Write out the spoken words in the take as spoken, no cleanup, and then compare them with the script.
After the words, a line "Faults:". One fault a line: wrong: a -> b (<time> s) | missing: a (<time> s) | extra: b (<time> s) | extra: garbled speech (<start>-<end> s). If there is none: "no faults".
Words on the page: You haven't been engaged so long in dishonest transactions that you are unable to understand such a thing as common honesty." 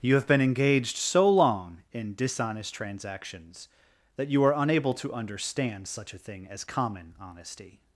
You have been engaged so long in dishonest transactions that you are unable to understand such a thing as common honesty."
Faults:
wrong: haven't -> have (0.1 s)